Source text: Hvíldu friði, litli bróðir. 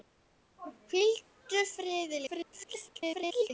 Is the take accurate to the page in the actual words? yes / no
no